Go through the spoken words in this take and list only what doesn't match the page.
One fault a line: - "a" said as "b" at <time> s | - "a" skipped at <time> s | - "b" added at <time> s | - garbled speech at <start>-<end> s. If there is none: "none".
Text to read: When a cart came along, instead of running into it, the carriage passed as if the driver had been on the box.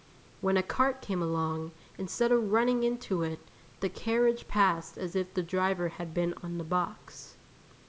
none